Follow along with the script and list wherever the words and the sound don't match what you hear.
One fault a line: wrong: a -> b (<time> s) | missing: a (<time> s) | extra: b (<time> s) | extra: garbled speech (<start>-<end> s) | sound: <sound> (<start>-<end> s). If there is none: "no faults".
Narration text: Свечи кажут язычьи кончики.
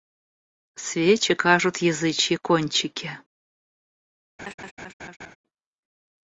sound: laugh (4.4-5.4 s)